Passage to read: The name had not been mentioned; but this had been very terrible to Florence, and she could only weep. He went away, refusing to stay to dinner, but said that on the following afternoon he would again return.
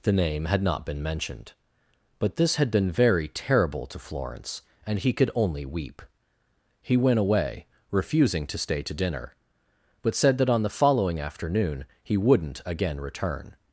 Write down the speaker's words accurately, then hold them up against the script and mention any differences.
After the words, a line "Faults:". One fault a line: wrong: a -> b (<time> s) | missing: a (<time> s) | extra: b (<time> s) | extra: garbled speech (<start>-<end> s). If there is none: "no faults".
The name had not been mentioned; but this had been very terrible to Florence, and he could only weep. He went away, refusing to stay to dinner, but said that on the following afternoon he wouldn't again return.
Faults:
wrong: she -> he (5.0 s)
wrong: would -> wouldn't (12.2 s)